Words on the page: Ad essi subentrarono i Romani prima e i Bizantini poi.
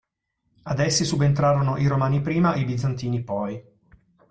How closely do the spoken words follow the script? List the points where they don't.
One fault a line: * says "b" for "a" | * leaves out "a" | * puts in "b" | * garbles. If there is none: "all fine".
all fine